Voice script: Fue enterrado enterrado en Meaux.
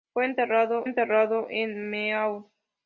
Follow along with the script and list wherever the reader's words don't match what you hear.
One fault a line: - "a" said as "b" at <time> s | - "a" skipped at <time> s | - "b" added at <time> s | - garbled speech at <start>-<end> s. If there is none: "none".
none